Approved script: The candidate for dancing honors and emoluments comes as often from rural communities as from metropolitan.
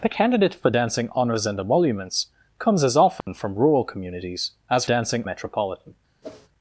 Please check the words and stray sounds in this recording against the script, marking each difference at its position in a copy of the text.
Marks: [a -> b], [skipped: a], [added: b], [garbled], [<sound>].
The candidate for dancing honors and emoluments comes as often [dropout] from rural communities as [from -> dancing] metropolitan. [whoosh]